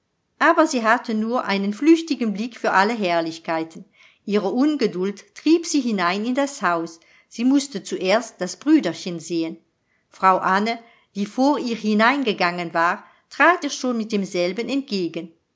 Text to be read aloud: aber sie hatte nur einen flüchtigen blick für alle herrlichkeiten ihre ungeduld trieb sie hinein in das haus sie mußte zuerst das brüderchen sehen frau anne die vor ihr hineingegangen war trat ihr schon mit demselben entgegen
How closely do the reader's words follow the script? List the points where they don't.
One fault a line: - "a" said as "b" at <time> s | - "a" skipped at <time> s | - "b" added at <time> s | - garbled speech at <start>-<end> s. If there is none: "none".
none